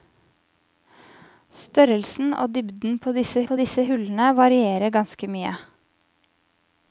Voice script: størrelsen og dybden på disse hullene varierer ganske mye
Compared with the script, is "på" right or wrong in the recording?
right